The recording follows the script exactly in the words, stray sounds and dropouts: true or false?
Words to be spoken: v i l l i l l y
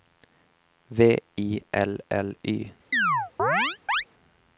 false